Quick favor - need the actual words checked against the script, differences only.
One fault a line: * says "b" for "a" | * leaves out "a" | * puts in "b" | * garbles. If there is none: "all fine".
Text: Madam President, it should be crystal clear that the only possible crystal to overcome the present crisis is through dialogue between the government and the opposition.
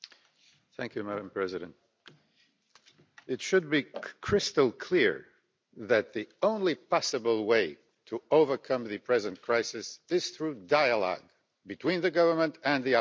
* says "way" for "crystal"